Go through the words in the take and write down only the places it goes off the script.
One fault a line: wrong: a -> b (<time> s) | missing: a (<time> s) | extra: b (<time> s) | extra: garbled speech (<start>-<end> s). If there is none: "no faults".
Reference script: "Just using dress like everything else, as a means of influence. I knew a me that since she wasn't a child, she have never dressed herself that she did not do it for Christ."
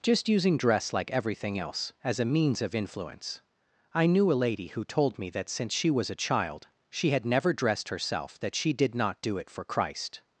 extra: lady who told (4.3 s)
wrong: wasn't -> was (5.9 s)
wrong: have -> had (7.1 s)